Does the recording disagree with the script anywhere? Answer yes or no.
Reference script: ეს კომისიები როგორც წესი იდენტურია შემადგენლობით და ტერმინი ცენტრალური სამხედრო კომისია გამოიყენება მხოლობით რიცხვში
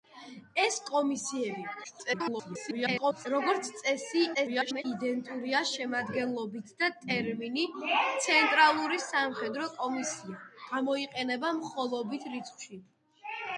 yes